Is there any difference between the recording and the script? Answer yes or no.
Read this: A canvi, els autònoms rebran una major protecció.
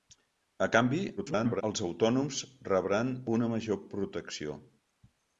yes